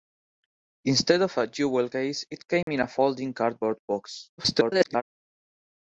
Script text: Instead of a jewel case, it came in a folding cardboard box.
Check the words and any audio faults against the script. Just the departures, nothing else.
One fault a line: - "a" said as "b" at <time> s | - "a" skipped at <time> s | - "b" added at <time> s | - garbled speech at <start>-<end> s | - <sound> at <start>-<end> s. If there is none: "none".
- dropout at 2.6-2.7 s
- garbled speech at 4.4-5.0 s